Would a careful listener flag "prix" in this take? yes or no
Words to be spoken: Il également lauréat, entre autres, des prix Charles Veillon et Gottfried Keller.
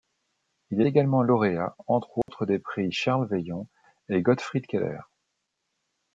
no